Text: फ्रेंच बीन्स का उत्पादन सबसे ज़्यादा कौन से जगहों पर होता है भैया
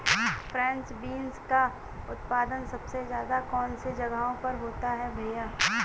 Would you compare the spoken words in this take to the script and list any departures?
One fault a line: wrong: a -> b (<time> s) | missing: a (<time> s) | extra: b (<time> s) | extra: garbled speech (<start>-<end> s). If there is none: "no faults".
no faults